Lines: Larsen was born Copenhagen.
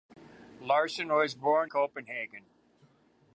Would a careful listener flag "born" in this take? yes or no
no